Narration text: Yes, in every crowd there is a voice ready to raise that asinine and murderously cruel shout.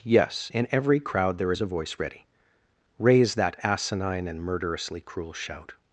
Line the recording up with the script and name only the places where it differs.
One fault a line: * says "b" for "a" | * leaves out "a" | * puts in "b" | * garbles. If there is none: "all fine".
* leaves out "to"